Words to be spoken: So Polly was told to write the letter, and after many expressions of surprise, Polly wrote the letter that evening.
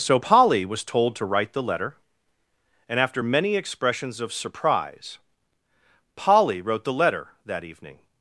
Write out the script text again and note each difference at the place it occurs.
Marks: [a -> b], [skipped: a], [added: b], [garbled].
So Polly was told to write the letter, and after many expressions of surprise, Polly wrote the letter that evening.